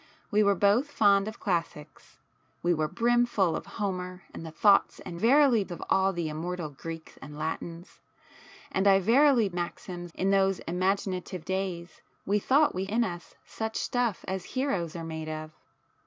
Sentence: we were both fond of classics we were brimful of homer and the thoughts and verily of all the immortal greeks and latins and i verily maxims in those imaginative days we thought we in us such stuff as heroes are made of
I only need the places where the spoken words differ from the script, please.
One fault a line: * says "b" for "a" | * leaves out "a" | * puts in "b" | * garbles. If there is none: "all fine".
all fine